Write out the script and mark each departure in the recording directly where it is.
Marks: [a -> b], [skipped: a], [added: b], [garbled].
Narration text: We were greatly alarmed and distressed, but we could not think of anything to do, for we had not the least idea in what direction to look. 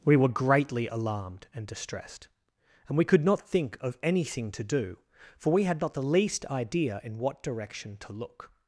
We were greatly alarmed and distressed, [but -> and] we could not think of anything to do, for we had not the least idea in what direction to look.